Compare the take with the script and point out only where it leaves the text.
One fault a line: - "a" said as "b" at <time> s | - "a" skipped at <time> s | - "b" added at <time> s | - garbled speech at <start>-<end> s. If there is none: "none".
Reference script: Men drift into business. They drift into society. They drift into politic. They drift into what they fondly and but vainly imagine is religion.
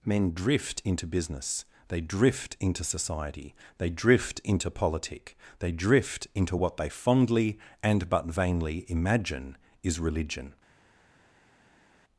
none